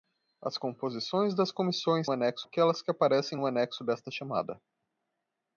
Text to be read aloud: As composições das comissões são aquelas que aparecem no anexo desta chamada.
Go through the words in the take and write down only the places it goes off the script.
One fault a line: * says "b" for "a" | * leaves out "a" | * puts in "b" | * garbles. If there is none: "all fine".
* says "anexo" for "são"